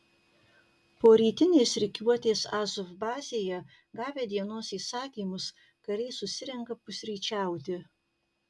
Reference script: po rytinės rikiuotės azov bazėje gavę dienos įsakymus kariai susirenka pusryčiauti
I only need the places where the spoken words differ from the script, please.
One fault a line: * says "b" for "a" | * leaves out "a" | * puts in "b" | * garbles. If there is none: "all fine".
all fine